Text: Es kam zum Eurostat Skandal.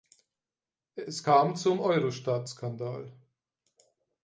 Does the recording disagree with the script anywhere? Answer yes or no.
no